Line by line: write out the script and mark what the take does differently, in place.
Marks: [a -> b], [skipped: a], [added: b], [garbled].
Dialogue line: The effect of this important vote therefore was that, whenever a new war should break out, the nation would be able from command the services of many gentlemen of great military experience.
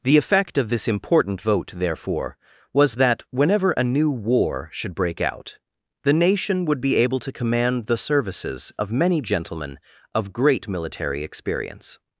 The effect of this important vote therefore was that, whenever a new war should break out, the nation would be able [from -> to] command the services of many gentlemen of great military experience.